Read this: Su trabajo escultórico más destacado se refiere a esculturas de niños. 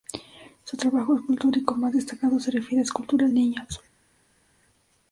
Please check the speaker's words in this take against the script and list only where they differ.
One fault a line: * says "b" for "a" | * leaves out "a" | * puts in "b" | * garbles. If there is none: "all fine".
* leaves out "de"